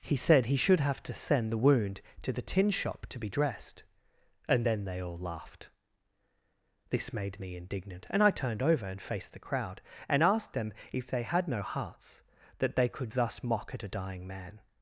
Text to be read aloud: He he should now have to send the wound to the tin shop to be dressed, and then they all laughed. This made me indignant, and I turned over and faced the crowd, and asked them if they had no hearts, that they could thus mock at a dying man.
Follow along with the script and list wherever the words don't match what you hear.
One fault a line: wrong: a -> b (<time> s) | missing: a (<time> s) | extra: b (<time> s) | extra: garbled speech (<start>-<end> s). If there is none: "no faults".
extra: said (0.1 s)
missing: now (0.8 s)